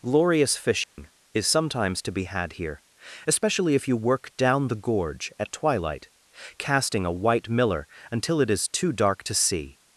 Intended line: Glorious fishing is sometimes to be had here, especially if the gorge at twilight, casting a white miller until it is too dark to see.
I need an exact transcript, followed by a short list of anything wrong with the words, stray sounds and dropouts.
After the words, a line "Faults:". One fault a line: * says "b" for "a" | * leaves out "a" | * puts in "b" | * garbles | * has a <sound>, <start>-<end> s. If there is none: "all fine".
Glorious fishing is sometimes to be had here, especially if you work down the gorge at twilight, casting a white miller until it is too dark to see.
Faults:
* has a dropout, 0.8-1.0 s
* puts in "you work down"